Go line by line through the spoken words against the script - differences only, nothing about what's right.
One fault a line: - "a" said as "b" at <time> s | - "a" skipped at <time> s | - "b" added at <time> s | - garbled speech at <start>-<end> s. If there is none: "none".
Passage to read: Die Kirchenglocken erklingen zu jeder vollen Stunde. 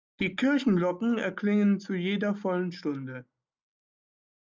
none